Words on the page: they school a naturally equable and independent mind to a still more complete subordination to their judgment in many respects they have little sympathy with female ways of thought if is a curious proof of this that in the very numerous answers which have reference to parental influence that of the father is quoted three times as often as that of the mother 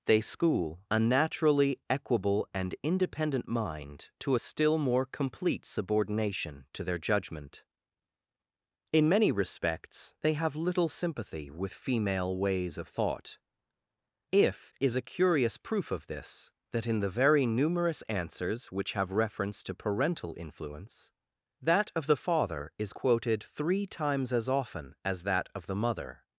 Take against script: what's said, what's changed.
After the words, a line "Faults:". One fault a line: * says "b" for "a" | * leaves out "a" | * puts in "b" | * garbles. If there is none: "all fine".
they school a naturally equable and independent mind to a still more complete subordination to their judgment in many respects they have little sympathy with female ways of thought if is a curious proof of this that in the very numerous answers which have reference to parental influence that of the father is quoted three times as often as that of the mother
Faults:
all fine